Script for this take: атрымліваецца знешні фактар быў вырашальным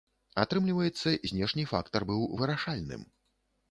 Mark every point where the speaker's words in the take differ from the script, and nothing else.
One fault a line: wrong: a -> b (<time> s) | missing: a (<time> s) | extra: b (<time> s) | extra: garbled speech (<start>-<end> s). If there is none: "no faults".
no faults